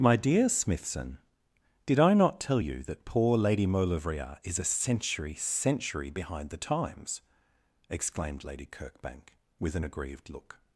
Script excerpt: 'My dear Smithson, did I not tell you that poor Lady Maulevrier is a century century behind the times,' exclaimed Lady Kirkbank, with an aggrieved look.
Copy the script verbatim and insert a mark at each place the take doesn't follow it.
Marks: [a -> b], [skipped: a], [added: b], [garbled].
'My dear Smithson, did I not tell you that poor Lady Maulevrier is a century century behind the times,' exclaimed Lady Kirkbank, with an aggrieved look.